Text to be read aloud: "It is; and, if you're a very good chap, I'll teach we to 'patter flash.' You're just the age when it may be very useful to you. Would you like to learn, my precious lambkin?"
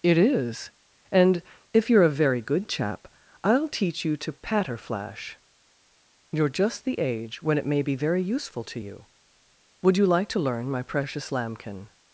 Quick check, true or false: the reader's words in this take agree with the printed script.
false